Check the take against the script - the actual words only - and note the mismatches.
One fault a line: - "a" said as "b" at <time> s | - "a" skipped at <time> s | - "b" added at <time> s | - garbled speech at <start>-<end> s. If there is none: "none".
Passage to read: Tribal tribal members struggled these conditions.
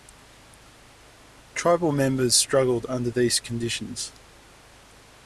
- "tribal" skipped at 1.9 s
- "under" added at 2.9 s